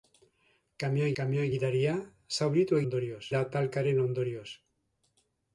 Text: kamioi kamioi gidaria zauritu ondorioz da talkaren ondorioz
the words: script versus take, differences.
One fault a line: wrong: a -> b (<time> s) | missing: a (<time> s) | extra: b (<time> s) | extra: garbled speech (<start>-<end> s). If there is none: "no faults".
no faults